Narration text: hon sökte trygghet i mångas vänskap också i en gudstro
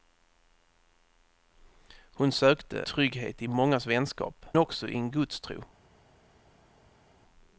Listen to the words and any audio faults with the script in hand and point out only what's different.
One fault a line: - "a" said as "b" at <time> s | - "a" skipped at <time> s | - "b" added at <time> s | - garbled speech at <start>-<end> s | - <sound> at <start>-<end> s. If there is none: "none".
none